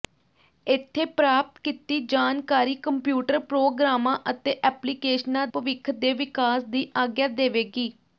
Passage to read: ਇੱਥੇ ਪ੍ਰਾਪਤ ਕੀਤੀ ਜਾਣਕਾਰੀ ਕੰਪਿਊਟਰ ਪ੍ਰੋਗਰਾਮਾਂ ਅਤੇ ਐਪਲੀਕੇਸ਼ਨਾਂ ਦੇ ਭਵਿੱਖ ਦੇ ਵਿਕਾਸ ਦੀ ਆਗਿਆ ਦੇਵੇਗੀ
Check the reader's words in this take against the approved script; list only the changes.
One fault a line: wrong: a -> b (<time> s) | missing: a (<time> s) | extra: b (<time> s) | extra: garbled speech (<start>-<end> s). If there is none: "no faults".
missing: ਦੇ (5.5 s)